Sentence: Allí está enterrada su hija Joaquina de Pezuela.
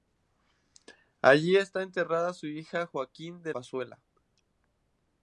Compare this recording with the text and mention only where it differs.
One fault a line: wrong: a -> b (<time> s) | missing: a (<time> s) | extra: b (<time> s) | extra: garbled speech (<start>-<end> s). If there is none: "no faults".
no faults